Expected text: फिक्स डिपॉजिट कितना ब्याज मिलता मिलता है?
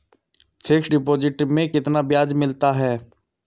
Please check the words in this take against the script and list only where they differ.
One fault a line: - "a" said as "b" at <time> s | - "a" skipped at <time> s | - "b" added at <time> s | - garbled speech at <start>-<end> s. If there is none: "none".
- "में" added at 1.4 s
- "मिलता" skipped at 2.7 s